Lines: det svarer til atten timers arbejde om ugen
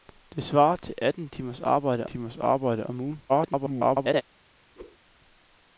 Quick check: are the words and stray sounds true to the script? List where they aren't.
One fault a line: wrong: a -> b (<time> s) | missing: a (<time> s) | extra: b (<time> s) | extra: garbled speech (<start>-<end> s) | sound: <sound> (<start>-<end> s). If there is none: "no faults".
extra: timers arbejde (2.0 s)
extra: garbled speech (3.3-4.2 s)
sound: whoosh (4.7-5.0 s)